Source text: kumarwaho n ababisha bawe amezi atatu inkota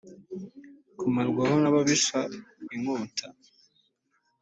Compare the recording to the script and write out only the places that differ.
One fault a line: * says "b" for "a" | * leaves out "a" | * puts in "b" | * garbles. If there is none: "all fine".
* leaves out "bawe amezi atatu"